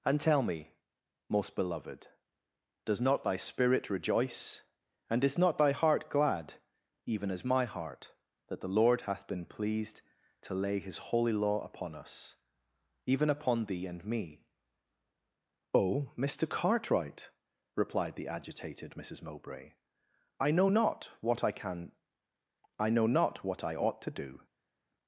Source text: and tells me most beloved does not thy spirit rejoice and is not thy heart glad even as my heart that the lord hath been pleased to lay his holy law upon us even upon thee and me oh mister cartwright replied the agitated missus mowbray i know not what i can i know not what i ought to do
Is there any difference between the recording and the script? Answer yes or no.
yes